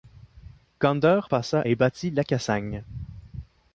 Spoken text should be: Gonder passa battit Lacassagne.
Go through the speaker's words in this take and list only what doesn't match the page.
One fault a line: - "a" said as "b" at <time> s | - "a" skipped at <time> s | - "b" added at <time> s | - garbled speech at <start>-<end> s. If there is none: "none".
- "et" added at 1.6 s